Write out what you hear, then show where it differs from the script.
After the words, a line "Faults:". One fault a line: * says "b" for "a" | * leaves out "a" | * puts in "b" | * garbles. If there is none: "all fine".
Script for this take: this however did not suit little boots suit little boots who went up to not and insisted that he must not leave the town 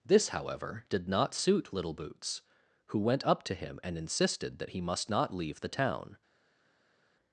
this however did not suit little boots who went up to him and insisted that he must not leave the town
Faults:
* leaves out "suit little boots"
* says "him" for "not"